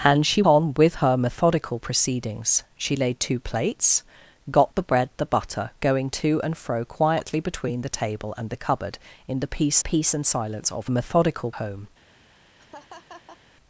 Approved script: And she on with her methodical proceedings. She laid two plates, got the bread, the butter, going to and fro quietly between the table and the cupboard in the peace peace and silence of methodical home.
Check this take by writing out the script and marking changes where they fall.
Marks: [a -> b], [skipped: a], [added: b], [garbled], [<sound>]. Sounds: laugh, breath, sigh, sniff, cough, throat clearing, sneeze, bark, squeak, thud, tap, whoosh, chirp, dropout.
And she on with her methodical proceedings. She laid two plates, got the bread, the butter, going to and fro quietly between the table and the cupboard in the peace peace and silence of methodical home. [laugh]